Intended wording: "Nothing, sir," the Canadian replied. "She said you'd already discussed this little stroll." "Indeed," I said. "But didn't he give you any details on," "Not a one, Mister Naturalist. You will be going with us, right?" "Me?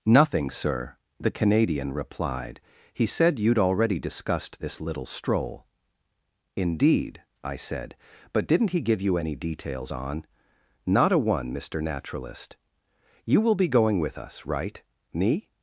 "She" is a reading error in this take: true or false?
true